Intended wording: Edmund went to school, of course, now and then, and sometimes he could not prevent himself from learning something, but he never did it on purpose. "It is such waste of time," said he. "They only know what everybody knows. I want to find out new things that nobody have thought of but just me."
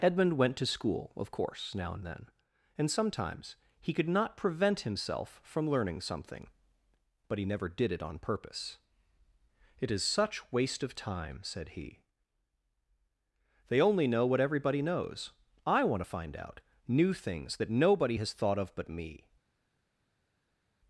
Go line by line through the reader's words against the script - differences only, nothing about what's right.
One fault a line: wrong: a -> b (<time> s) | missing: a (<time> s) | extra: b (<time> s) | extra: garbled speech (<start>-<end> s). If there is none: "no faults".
wrong: have -> has (18.2 s)
missing: just (18.9 s)